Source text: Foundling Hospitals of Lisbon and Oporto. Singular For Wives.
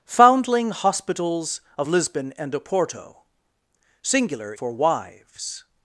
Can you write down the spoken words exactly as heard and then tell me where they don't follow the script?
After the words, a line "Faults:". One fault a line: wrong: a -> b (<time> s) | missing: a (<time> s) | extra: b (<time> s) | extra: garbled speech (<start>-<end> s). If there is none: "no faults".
Foundling Hospitals of Lisbon and Oporto. Singular For Wives.
Faults:
no faults